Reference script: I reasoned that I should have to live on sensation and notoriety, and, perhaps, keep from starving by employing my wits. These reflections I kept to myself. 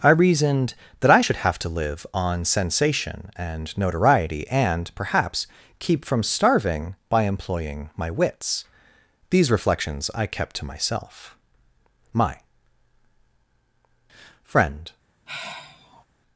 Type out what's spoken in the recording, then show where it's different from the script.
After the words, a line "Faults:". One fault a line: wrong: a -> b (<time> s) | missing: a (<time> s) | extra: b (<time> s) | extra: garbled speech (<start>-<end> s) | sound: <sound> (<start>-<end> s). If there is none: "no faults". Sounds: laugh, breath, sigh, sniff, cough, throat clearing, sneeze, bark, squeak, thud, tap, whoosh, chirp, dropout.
I reasoned that I should have to live on sensation and notoriety, and, perhaps, keep from starving by employing my wits. These reflections I kept to myself. My "friend
Faults:
extra: My friend (12.1 s)
sound: sigh (15.3-16.0 s)